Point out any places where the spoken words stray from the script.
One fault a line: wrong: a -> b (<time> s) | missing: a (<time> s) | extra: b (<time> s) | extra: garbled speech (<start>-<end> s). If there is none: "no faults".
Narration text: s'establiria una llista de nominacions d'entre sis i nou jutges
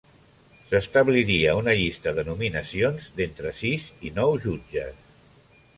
no faults